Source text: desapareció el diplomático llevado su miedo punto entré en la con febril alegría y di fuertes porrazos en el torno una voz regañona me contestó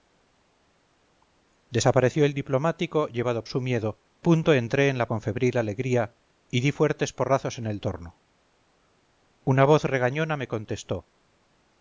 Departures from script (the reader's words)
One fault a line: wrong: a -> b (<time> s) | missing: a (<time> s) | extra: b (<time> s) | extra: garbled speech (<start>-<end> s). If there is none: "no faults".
no faults